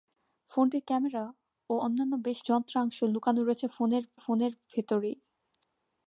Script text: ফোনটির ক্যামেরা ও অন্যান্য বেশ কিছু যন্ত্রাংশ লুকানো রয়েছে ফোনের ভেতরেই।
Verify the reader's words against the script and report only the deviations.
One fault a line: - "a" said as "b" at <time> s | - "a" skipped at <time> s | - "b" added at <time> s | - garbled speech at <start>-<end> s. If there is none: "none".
- "কিছু" skipped at 2.4 s
- "ফোনের" added at 4.2 s